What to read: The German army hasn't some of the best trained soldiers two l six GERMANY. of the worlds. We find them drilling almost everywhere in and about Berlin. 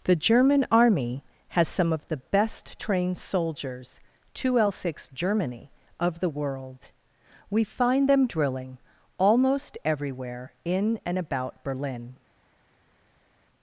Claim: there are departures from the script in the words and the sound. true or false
true